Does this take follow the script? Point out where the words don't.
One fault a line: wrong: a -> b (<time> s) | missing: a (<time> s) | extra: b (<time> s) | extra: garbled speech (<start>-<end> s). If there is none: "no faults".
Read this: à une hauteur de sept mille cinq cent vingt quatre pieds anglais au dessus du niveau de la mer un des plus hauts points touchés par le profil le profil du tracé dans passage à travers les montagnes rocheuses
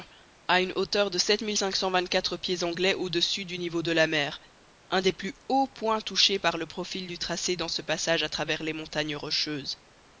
missing: le profil (7.1 s)
extra: ce (7.7 s)